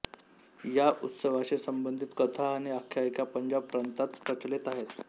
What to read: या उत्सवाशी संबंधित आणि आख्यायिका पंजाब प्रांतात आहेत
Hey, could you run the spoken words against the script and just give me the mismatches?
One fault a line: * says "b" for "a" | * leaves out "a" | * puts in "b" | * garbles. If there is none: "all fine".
* puts in "कथा"
* puts in "प्रचलित"